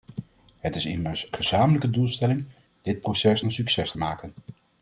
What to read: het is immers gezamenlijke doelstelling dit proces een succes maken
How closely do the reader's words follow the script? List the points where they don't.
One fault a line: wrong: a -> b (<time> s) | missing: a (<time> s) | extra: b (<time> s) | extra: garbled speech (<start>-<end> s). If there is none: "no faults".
no faults